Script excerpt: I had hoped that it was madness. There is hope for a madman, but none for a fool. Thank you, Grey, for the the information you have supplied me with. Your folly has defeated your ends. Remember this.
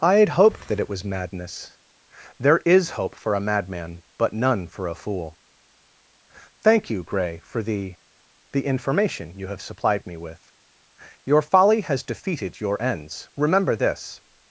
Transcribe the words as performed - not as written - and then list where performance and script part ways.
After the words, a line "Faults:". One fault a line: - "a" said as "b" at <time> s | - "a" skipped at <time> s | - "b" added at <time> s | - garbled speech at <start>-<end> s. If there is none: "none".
I had hoped that it was madness. There is hope for a madman, but none for a fool. Thank you, Grey, for the the information you have supplied me with. Your folly has defeated your ends. Remember this.
Faults:
none